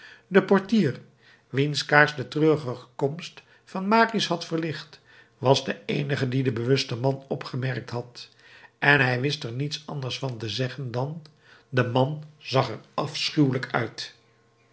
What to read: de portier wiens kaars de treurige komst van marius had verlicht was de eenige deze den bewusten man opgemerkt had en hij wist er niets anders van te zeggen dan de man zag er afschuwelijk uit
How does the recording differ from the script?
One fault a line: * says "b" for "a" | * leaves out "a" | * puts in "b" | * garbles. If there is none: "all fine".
* says "die" for "deze"